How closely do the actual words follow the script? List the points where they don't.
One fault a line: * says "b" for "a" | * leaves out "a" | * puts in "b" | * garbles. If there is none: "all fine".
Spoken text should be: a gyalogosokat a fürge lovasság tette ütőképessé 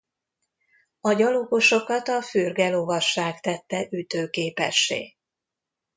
all fine